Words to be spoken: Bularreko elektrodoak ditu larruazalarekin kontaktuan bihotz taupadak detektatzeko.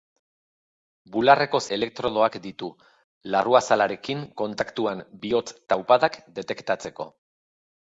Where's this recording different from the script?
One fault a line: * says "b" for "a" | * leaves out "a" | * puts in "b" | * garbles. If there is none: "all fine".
all fine